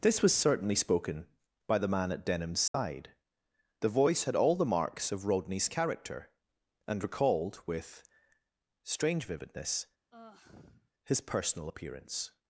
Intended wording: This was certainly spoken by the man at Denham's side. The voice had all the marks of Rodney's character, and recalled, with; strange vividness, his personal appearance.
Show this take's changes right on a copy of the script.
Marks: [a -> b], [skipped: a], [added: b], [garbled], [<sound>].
This was certainly spoken by the man at Denham's side. [dropout] The voice had all the marks of Rodney's character, and recalled, with; strange vividness, [sigh] his personal appearance.